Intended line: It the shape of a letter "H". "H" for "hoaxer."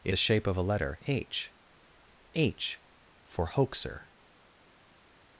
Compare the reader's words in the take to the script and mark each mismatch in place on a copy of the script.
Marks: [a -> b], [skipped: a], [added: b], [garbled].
It the shape of a letter "H". "H" for "hoaxer."